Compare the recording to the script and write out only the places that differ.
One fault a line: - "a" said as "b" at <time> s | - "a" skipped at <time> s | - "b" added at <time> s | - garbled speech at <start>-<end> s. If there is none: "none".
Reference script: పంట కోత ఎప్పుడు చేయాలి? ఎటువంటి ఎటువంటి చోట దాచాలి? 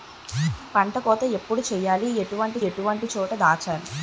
none